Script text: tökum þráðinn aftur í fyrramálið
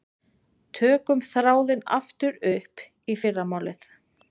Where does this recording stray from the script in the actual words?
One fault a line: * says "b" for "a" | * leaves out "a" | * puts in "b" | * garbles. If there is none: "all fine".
* puts in "upp"